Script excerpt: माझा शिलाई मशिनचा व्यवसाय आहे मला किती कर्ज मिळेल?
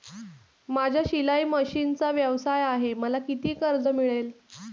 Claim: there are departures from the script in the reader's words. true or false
false